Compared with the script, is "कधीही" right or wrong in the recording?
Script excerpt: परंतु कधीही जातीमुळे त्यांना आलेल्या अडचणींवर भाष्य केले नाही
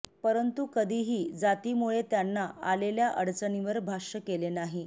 right